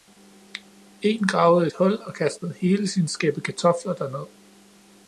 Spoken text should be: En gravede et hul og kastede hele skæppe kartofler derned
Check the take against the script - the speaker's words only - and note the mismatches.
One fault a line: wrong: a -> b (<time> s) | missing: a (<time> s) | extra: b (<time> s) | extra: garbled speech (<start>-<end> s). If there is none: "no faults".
extra: sin (2.9 s)